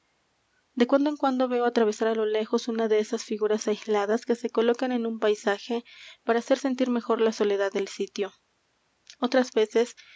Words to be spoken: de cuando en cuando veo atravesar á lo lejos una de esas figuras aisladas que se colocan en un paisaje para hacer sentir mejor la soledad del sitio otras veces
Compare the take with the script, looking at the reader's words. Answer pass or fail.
pass